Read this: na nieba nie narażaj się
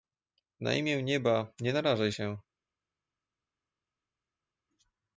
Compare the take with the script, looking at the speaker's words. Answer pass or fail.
fail